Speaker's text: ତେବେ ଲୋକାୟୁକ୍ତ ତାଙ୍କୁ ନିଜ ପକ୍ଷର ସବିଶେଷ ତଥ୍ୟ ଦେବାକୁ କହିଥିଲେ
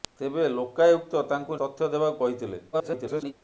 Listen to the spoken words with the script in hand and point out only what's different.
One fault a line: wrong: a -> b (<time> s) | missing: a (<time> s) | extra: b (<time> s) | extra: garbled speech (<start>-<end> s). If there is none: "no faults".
missing: ନିଜ ପକ୍ଷର ସବିଶେଷ (1.6 s)
extra: garbled speech (2.7-3.3 s)